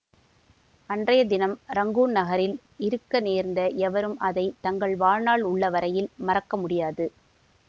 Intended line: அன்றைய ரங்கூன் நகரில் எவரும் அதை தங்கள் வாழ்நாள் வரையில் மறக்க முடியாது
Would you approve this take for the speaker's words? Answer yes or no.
no